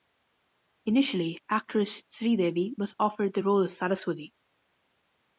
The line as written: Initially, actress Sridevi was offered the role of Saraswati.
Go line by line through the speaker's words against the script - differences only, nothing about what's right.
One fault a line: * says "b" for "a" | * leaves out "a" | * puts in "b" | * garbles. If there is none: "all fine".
all fine